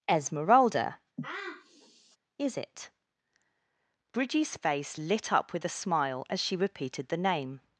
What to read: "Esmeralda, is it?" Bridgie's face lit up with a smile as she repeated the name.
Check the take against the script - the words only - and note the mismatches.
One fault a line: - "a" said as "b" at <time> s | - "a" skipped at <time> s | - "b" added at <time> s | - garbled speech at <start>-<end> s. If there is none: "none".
none